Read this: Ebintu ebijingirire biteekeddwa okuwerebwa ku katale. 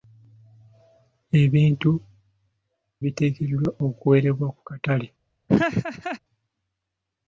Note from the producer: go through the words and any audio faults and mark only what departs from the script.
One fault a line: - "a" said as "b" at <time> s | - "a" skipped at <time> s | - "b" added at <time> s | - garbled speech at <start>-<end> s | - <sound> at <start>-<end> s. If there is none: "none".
- "ebijingirire" skipped at 1.9 s
- laugh at 5.5-6.2 s